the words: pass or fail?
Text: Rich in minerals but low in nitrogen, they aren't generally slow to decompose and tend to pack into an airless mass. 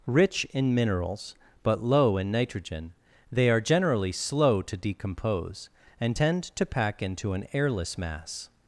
fail